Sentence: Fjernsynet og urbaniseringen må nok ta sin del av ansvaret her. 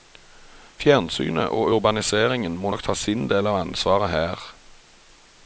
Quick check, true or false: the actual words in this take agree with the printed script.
true